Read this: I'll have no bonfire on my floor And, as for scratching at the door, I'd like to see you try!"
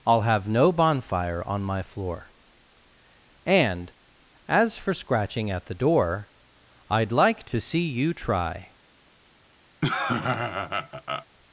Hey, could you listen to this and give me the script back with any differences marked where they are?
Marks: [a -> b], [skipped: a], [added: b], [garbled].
I'll have no bonfire on my floor And, as for scratching at the door, I'd like to see you try!"